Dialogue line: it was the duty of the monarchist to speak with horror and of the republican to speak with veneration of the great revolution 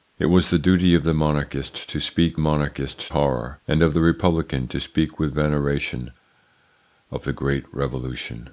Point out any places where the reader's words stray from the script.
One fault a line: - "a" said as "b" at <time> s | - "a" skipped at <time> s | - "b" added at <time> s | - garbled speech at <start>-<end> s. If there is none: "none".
- "with" said as "monarchist" at 2.4 s